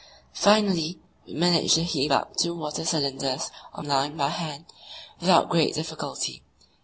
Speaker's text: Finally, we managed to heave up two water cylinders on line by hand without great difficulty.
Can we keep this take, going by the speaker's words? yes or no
yes